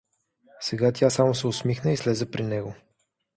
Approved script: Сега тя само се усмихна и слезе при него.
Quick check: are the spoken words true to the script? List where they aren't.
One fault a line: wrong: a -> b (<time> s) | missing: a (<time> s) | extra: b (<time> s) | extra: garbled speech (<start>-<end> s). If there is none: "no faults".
no faults